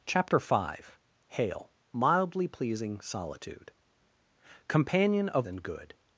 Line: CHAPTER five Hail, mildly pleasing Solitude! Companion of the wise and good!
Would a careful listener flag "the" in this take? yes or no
yes